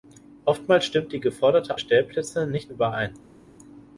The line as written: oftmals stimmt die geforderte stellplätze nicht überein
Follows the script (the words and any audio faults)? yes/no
yes